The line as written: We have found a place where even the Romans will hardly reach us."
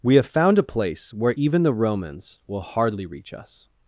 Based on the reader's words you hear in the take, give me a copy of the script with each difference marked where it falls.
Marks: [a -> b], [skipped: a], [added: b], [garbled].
We have found a place where even the Romans will hardly reach us."